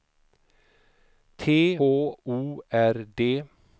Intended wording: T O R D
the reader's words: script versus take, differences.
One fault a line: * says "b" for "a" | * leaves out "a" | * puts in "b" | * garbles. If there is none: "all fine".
all fine